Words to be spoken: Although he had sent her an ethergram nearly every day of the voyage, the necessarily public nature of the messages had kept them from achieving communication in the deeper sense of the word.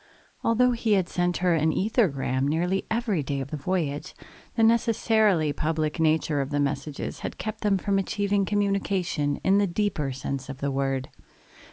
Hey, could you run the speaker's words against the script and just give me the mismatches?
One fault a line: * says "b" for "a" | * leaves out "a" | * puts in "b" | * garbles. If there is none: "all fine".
all fine